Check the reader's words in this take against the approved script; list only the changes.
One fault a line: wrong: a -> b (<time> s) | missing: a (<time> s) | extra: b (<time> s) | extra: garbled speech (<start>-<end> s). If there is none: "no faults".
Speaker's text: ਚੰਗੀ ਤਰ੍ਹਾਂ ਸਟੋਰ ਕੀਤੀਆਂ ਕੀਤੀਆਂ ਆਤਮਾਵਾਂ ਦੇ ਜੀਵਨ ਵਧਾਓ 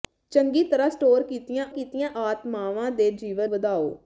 no faults